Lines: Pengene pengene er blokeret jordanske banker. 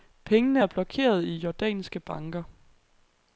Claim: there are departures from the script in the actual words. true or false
true